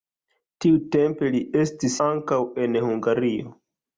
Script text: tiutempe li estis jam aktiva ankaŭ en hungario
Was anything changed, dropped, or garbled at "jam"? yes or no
yes